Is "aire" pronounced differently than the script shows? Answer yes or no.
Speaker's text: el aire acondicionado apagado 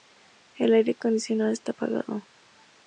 no